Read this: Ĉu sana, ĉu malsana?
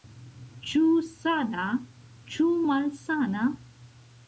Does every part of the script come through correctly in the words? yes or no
yes